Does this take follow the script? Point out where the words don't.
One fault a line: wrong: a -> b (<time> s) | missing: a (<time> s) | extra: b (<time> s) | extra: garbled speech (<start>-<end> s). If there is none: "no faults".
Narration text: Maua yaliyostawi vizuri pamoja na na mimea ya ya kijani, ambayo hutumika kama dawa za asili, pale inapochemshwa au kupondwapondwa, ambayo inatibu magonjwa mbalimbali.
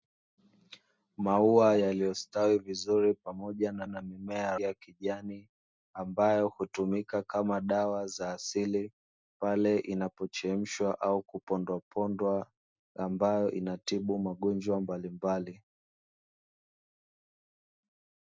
no faults